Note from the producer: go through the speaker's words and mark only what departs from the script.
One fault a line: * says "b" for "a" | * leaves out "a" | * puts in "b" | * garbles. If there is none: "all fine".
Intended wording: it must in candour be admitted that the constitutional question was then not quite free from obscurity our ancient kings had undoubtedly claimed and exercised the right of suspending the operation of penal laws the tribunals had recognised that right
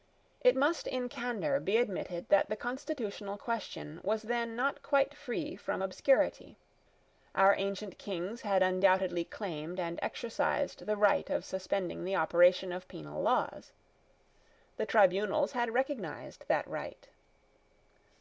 all fine